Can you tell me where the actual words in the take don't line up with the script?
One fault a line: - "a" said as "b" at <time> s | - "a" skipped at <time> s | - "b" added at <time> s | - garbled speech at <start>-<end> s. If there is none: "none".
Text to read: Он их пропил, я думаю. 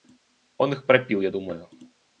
none